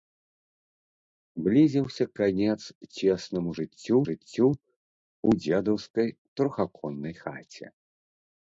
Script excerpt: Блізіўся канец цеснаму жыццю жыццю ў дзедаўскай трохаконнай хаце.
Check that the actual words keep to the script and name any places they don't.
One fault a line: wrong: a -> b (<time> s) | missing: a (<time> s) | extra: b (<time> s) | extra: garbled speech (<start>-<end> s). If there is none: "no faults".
no faults